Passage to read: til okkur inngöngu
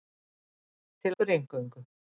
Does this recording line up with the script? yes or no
yes